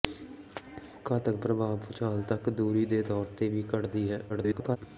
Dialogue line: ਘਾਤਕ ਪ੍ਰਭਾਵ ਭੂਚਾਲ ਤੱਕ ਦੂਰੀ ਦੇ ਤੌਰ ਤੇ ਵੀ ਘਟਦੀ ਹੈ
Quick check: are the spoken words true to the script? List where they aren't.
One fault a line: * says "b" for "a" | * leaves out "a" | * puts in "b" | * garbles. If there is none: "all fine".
* garbles